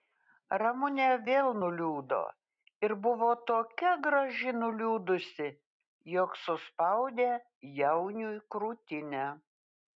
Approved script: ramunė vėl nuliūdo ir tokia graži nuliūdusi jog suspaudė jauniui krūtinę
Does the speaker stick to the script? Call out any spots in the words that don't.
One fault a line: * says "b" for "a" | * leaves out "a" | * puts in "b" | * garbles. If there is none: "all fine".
* puts in "buvo"